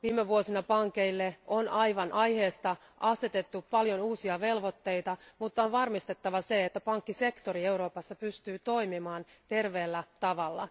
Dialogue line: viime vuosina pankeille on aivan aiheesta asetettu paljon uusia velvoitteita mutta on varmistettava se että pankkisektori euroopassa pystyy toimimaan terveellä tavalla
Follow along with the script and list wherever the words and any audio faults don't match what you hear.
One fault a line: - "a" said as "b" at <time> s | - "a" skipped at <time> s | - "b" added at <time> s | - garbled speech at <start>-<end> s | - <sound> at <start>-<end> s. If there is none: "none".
none